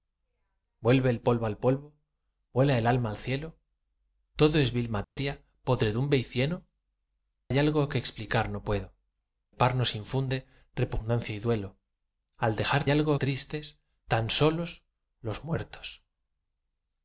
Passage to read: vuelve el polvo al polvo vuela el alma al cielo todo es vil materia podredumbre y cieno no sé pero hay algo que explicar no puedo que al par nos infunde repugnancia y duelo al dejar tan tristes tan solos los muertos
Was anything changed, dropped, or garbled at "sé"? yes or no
yes